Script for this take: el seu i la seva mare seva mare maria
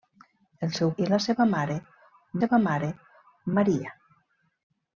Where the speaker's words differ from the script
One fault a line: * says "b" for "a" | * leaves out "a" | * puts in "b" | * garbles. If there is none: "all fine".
all fine